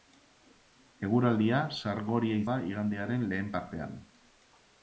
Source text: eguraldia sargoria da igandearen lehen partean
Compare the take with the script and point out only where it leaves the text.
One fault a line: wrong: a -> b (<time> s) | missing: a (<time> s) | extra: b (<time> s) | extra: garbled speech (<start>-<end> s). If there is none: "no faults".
no faults